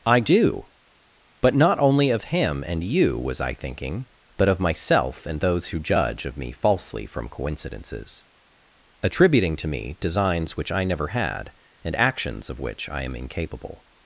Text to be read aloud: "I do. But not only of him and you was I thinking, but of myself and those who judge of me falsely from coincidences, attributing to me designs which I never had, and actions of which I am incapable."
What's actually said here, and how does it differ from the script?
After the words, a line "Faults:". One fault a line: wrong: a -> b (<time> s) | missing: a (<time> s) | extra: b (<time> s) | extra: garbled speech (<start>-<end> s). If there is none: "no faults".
"I do. But not only of him and you was I thinking, but of myself and those who judge of me falsely from coincidences, attributing to me designs which I never had, and actions of which I am incapable."
Faults:
no faults